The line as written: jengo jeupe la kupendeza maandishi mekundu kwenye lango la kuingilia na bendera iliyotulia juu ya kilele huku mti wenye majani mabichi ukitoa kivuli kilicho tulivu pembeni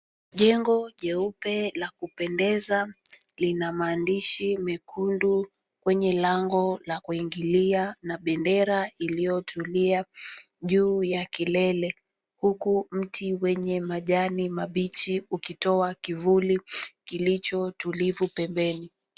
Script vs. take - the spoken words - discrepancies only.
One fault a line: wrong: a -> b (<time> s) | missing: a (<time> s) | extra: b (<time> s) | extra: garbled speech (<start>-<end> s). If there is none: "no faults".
extra: lina (3.4 s)